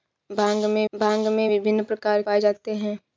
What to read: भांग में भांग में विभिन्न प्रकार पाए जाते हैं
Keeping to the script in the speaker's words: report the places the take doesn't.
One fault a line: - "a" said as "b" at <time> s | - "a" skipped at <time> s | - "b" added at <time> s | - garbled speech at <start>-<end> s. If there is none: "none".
none